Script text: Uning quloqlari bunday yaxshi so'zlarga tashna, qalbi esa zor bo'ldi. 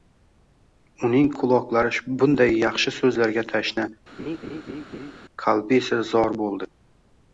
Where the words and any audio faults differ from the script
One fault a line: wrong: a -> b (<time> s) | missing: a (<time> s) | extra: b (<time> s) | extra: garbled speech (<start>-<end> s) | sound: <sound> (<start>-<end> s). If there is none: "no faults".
sound: laugh (4.2-5.1 s)